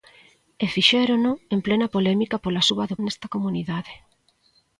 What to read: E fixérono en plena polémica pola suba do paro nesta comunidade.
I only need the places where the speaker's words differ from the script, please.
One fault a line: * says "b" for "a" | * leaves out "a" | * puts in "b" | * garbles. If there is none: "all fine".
* leaves out "paro"